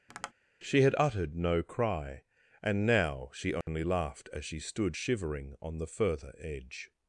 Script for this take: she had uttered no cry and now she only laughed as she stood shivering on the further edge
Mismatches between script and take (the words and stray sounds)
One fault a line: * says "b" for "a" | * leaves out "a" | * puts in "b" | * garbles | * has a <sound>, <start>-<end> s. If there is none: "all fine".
* has a tap, 0.1-0.3 s
* has a dropout, 3.6-3.7 s